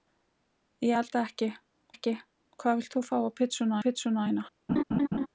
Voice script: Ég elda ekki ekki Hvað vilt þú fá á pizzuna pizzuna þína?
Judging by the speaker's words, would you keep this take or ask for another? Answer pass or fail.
pass